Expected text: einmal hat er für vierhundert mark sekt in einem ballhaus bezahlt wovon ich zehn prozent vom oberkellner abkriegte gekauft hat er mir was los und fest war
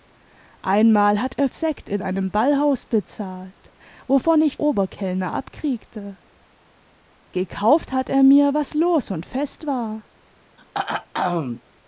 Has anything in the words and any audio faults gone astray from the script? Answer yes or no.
yes